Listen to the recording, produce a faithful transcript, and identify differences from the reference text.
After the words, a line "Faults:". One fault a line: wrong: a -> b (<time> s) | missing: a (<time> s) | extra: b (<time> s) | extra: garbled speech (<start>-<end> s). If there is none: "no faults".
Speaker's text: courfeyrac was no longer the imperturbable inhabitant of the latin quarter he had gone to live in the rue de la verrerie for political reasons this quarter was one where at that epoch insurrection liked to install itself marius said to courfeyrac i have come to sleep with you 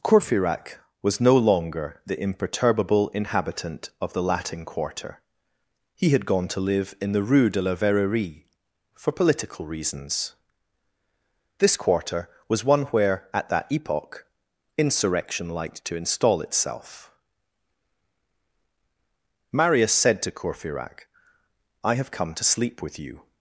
courfeyrac was no longer the imperturbable inhabitant of the latin quarter he had gone to live in the rue de la verrerie for political reasons this quarter was one where at that epoch insurrection liked to install itself marius said to courfeyrac i have come to sleep with you
Faults:
no faults